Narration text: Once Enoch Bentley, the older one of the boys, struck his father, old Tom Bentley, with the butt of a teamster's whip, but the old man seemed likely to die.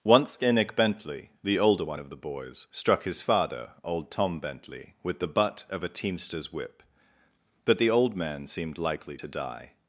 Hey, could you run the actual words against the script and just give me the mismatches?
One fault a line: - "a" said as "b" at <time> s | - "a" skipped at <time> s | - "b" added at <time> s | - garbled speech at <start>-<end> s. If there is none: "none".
none